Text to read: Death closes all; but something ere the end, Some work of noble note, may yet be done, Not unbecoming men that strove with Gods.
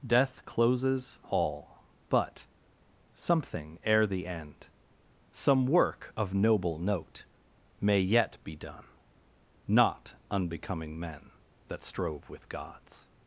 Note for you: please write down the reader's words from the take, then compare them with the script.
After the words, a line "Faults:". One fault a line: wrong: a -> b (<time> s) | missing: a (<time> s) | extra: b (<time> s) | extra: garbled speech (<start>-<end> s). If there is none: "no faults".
Death closes all; but something ere the end, Some work of noble note, may yet be done, Not unbecoming men that strove with Gods.
Faults:
no faults